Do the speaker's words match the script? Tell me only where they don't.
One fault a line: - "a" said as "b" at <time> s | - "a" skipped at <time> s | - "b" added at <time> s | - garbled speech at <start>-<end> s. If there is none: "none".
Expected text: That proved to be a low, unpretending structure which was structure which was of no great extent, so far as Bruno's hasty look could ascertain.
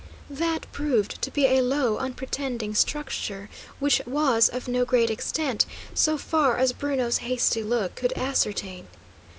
- "structure which was" skipped at 4.5 s